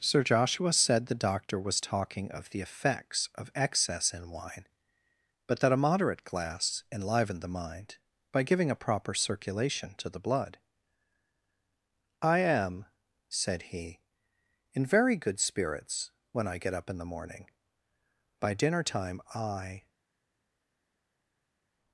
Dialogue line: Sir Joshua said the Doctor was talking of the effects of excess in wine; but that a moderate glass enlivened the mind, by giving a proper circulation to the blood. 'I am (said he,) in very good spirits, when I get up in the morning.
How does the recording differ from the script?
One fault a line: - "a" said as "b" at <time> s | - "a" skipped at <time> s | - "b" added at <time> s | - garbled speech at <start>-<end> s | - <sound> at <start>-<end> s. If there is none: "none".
- "By dinner time I" added at 18.4 s